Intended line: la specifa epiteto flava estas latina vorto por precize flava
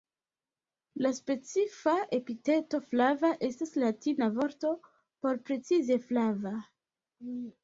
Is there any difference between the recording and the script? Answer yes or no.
no